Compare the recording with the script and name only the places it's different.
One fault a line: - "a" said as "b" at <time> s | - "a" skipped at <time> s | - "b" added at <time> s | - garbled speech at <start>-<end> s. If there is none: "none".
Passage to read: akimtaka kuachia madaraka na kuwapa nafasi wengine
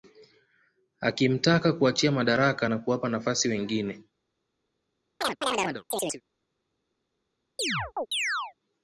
none